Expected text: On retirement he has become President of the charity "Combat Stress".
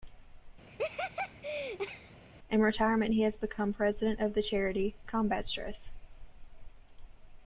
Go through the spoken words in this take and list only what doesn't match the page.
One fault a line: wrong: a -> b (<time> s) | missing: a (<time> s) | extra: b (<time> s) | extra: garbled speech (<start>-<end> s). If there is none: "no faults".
wrong: On -> In (2.5 s)